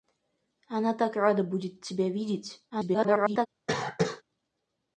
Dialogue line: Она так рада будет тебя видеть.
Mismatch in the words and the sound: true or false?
true